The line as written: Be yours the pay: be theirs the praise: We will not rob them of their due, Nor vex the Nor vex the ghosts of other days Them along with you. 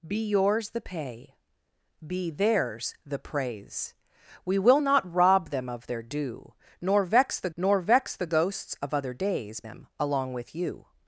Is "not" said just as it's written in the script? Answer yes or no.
yes